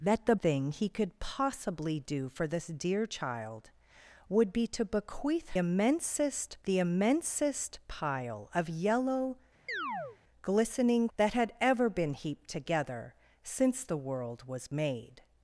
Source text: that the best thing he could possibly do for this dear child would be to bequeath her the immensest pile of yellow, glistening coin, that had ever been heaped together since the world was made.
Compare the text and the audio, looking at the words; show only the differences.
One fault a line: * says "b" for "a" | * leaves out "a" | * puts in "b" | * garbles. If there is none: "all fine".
* leaves out "best"
* says "immensest" for "her"
* leaves out "coin"